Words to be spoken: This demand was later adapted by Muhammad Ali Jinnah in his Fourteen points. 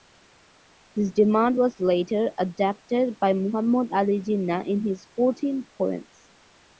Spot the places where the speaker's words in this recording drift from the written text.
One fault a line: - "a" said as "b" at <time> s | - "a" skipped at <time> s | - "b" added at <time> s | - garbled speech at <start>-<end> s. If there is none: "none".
none